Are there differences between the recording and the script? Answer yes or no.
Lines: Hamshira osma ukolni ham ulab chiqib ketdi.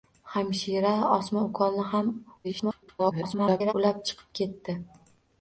yes